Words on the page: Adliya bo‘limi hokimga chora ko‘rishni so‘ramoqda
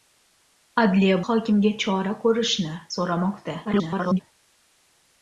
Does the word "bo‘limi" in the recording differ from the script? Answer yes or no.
yes